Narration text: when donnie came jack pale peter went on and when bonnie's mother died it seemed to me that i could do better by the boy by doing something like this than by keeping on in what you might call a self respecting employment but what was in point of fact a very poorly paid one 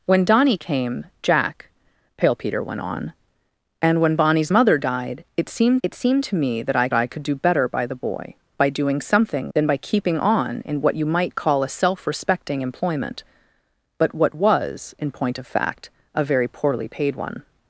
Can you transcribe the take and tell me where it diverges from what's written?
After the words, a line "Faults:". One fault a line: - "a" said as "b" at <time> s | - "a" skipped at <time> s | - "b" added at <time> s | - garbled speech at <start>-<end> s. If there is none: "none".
when donnie came jack pale peter went on and when bonnie's mother died it seemed it seemed to me that i i could do better by the boy by doing something than by keeping on in what you might call a self respecting employment but what was in point of fact a very poorly paid one
Faults:
- "it seemed" added at 5.8 s
- "i" added at 6.9 s
- "like this" skipped at 9.5 s